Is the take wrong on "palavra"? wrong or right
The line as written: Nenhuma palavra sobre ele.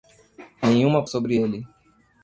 wrong